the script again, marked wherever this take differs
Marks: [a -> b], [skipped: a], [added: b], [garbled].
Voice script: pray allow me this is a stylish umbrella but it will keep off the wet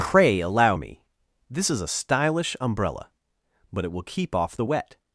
pray allow me this is a stylish umbrella but it will keep off the wet